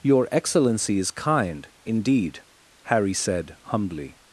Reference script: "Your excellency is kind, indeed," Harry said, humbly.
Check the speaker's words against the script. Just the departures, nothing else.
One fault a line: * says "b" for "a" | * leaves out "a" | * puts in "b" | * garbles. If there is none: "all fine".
all fine